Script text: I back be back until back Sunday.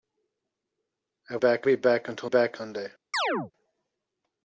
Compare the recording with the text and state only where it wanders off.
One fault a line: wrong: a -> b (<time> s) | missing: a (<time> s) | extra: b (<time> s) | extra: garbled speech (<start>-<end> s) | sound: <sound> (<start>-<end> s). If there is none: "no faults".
sound: chirp (3.1-3.5 s)